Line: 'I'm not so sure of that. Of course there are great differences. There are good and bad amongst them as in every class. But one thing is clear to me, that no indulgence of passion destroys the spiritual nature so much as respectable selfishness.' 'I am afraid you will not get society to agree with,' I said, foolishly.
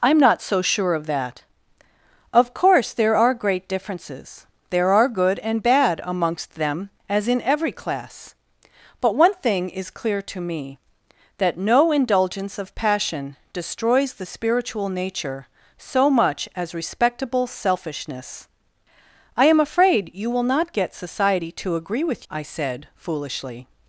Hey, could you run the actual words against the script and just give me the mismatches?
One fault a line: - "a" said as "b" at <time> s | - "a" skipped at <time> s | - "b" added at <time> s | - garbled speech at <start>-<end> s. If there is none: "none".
none